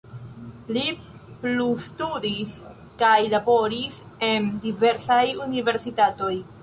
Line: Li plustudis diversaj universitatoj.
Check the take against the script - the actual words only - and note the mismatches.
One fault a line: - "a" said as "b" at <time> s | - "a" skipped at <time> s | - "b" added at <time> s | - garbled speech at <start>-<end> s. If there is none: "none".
- "kaj laboris en" added at 3.0 s